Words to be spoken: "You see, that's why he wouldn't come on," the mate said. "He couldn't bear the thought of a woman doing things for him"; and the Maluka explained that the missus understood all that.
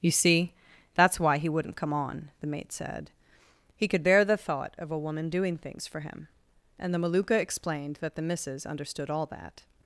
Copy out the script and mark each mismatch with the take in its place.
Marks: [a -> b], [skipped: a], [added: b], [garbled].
"You see, that's why he wouldn't come on," the mate said. "He [couldn't -> could] bear the thought of a woman doing things for him"; and the Maluka explained that the missus understood all that.